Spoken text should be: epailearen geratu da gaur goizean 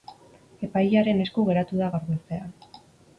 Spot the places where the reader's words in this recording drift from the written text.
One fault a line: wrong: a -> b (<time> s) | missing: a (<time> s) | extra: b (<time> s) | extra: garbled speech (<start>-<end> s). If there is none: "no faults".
extra: esku (1.2 s)